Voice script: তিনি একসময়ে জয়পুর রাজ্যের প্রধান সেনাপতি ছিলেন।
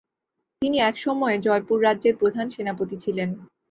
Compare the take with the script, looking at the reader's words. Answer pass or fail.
pass